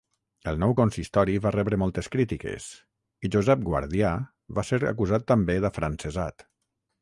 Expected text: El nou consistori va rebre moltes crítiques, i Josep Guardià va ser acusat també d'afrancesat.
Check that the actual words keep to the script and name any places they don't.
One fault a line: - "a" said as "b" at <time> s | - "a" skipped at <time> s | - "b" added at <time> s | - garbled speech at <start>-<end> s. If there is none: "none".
none